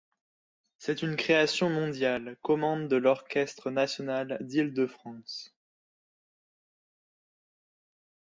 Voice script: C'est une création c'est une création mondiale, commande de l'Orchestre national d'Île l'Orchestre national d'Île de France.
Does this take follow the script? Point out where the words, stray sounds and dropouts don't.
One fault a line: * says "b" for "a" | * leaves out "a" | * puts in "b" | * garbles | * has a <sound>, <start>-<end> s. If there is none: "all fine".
* leaves out "c'est une création"
* leaves out "l'Orchestre national d'Île"